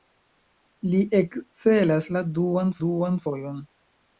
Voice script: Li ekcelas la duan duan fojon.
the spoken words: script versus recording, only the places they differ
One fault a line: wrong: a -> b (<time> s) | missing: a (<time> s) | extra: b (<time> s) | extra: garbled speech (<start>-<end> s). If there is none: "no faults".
no faults